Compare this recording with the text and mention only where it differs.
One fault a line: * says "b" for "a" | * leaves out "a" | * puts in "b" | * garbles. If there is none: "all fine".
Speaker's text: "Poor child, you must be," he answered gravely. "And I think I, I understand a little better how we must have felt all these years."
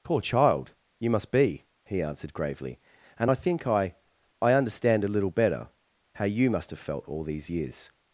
* says "you" for "we"